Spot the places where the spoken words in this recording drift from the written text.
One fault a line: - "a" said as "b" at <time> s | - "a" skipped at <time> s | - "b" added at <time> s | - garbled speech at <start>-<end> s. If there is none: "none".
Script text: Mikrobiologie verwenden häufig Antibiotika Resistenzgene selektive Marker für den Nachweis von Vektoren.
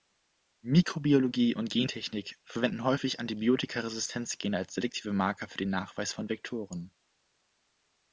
- "und Gentechnik" added at 1.5 s
- "als" added at 4.6 s